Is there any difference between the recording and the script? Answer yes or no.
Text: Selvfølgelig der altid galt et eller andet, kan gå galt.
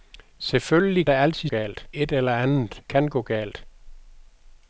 no